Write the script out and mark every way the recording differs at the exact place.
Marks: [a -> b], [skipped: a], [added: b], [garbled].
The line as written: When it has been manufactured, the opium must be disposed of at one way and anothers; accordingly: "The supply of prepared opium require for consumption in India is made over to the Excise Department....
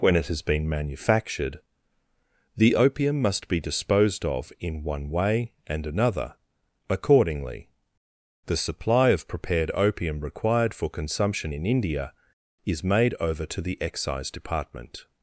When it has been manufactured, the opium must be disposed of [at -> in] one way and [anothers; -> another] accordingly: "The supply of prepared opium [require -> required] for consumption in India is made over to the Excise Department....